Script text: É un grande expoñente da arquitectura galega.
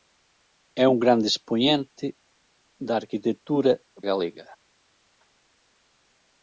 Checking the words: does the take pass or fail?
pass